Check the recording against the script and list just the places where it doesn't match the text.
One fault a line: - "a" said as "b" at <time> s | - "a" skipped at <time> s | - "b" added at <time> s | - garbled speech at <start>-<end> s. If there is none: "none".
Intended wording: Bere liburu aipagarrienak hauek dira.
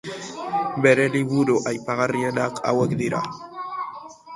none